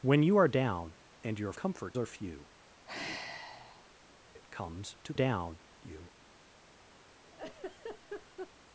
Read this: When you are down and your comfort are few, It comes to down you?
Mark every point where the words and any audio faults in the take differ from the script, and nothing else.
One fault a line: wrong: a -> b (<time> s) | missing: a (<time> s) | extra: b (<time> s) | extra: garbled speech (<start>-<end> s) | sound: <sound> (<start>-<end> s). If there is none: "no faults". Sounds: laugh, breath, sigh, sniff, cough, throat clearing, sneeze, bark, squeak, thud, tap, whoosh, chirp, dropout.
sound: sigh (2.9-3.9 s)
sound: laugh (7.2-8.5 s)